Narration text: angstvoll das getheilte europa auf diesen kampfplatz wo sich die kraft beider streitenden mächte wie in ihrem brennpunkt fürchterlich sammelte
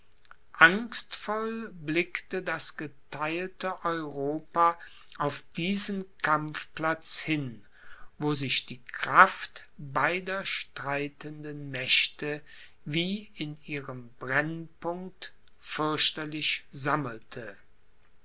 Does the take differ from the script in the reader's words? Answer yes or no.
yes